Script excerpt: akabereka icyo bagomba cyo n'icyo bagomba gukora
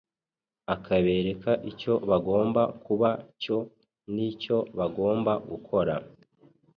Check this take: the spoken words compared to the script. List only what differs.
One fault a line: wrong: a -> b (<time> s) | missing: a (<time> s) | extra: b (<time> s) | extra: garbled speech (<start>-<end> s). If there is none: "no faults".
extra: kuba (2.9 s)